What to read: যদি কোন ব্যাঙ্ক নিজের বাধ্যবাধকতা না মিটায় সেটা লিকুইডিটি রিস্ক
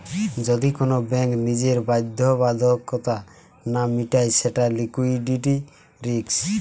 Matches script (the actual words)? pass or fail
pass